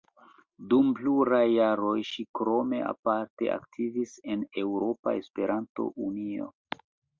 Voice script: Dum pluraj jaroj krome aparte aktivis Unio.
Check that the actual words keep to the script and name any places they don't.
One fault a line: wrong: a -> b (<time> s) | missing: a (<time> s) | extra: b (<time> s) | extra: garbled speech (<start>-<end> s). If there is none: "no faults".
extra: ŝi (2.1 s)
extra: en Eŭropa Esperanto (4.4 s)